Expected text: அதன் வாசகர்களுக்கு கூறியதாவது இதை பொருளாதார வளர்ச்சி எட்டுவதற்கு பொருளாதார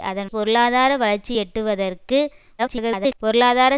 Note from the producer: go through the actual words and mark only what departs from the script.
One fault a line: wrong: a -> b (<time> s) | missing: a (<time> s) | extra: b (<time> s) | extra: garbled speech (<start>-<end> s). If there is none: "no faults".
missing: வாசகர்களுக்கு கூறியதாவது இதை (0.3 s)
extra: garbled speech (2.6-3.2 s)